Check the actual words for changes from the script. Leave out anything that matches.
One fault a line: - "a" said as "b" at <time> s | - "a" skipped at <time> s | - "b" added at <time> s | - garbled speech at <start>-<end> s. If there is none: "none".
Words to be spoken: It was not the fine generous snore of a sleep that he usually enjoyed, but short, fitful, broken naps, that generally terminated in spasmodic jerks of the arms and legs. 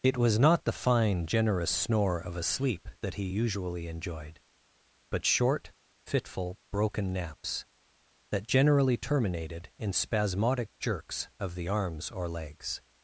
- "and" said as "or" at 12.1 s